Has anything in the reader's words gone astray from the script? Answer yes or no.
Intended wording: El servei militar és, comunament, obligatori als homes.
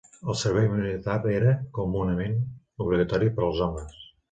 yes